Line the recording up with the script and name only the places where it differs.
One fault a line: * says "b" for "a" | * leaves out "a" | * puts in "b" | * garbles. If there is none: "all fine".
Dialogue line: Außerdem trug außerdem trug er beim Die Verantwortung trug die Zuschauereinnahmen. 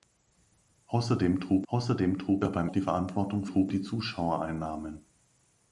all fine